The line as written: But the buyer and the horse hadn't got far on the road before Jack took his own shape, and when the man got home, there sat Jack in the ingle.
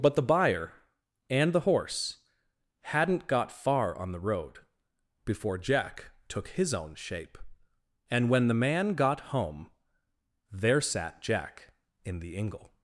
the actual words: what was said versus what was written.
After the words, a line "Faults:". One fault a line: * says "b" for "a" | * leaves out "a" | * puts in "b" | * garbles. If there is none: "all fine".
But the buyer and the horse hadn't got far on the road before Jack took his own shape, and when the man got home, there sat Jack in the ingle.
Faults:
all fine